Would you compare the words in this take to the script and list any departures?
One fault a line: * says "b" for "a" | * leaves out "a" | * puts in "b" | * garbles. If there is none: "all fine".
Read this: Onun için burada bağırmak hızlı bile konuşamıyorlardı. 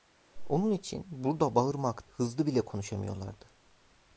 all fine